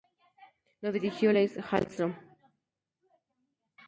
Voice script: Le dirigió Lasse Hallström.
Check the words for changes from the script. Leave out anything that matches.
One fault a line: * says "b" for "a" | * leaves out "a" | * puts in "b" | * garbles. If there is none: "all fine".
* says "Lo" for "Le"